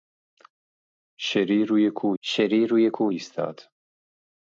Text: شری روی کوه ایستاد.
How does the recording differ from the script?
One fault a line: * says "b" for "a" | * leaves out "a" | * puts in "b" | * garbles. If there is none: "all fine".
* puts in "شری روی کوه"